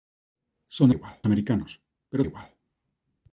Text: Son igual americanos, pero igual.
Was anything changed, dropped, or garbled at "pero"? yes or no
no